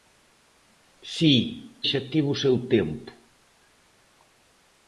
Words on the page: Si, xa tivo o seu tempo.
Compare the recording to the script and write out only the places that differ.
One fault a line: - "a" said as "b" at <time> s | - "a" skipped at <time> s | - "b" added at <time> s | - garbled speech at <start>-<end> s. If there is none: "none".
none